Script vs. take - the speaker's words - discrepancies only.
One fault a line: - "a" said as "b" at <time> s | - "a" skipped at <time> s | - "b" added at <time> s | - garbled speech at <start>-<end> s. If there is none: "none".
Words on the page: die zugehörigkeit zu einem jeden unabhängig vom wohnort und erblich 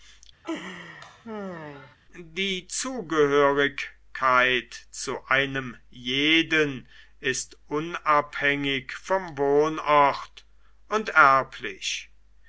- "ist" added at 7.2 s